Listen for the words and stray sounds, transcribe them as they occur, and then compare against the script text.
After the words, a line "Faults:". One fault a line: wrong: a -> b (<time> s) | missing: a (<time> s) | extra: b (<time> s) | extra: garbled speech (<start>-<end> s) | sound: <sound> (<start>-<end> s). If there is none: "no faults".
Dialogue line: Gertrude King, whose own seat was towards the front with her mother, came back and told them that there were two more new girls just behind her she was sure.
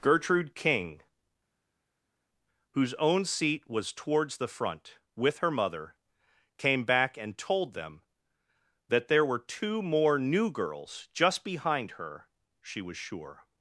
Gertrude King, whose own seat was towards the front with her mother, came back and told them that there were two more new girls just behind her she was sure.
Faults:
no faults